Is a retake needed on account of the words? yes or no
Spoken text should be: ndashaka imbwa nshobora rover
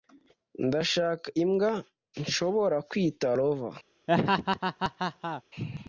yes